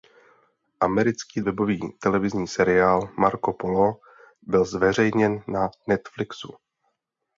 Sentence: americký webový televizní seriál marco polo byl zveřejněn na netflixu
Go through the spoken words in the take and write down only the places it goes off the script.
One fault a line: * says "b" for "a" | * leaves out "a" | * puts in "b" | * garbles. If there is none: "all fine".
all fine